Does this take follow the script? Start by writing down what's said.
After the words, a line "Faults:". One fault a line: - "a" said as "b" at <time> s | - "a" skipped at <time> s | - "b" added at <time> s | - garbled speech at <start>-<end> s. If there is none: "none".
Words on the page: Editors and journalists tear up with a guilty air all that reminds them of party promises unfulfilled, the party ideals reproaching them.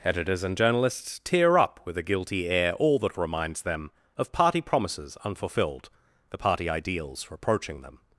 Editors and journalists tear up with a guilty air all that reminds them of party promises unfulfilled, the party ideals reproaching them.
Faults:
none